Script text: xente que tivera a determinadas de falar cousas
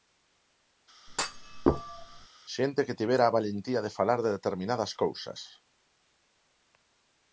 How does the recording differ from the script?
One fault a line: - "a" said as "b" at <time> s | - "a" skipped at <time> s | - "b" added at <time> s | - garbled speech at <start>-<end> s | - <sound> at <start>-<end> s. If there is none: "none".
- thud at 1.1-2.3 s
- "determinadas" said as "valentía" at 3.4 s
- "de determinadas" added at 4.2 s